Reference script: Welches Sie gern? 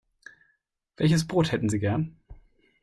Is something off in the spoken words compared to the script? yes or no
yes